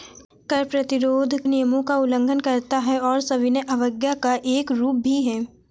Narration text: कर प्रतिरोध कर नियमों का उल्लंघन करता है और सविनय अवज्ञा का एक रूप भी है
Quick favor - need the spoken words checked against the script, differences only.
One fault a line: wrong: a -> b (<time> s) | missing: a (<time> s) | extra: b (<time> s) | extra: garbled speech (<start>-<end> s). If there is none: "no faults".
missing: कर (1.4 s)